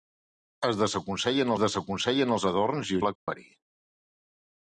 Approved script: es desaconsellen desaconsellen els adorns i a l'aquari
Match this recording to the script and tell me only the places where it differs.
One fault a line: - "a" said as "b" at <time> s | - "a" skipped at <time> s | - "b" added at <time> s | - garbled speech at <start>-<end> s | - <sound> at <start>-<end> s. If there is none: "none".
- dropout at 3.2-3.3 s